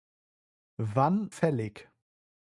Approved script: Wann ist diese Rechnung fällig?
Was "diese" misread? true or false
true